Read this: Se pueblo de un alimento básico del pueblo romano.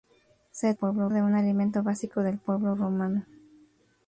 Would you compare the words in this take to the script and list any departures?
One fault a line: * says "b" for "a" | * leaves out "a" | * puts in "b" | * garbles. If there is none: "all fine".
all fine